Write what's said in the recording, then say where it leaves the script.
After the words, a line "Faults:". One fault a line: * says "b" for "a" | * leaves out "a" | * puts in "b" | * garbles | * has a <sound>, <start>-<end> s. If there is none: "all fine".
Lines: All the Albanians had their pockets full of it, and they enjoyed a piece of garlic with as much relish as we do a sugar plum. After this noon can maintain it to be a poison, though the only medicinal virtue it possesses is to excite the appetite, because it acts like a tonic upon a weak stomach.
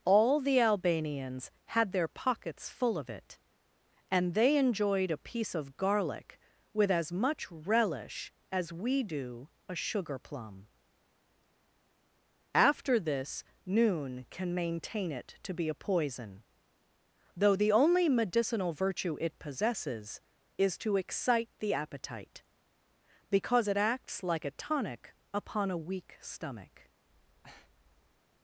All the Albanians had their pockets full of it, and they enjoyed a piece of garlic with as much relish as we do a sugar plum. After this noon can maintain it to be a poison, though the only medicinal virtue it possesses is to excite the appetite, because it acts like a tonic upon a weak stomach.
Faults:
* has a breath, 27.0-28.2 s